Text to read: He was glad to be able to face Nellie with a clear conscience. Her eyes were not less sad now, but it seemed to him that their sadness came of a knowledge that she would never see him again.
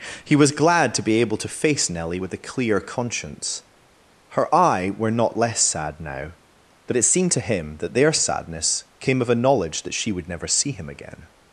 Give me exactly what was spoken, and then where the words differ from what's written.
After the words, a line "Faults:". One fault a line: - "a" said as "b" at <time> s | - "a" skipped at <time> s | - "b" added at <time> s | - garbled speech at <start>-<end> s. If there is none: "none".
He was glad to be able to face Nellie with a clear conscience. Her eye were not less sad now, but it seemed to him that their sadness came of a knowledge that she would never see him again.
Faults:
- "eyes" said as "eye" at 4.5 s